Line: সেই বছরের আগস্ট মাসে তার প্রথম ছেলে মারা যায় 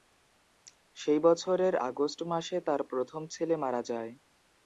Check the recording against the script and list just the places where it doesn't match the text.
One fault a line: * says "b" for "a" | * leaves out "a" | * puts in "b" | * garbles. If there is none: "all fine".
all fine